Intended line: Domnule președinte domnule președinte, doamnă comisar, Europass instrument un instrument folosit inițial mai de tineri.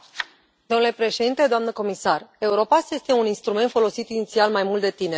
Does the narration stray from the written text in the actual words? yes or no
yes